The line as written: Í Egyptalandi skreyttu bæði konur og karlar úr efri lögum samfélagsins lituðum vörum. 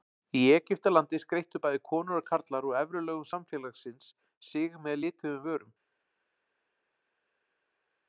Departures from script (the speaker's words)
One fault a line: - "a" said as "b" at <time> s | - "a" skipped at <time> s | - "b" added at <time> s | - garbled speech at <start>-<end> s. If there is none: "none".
- "sig með" added at 4.5 s